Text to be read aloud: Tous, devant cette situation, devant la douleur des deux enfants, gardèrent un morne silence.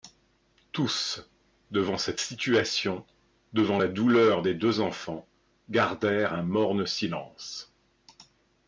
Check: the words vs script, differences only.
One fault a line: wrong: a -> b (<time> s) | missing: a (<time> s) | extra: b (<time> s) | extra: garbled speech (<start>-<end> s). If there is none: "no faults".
no faults